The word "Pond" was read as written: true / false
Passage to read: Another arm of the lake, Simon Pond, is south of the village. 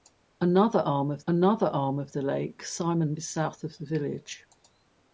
false